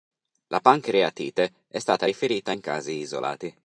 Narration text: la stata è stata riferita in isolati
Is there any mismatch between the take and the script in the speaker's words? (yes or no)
yes